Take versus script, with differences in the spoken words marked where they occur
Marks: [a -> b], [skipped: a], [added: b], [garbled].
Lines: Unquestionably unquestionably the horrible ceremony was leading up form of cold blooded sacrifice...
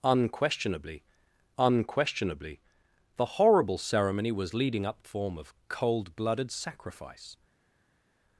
Unquestionably unquestionably the horrible ceremony was leading up form of cold blooded sacrifice...